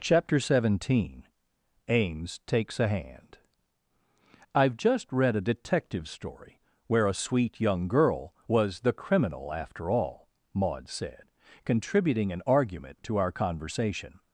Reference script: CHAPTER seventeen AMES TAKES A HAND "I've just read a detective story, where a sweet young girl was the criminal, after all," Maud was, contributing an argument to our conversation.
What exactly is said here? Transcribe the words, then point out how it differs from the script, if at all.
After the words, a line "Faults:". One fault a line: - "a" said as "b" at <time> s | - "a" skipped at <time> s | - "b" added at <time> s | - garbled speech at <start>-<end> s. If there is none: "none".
CHAPTER seventeen AMES TAKES A HAND "I've just read a detective story, where a sweet young girl was the criminal, after all," Maud said, contributing an argument to our conversation.
Faults:
- "was" said as "said" at 10.9 s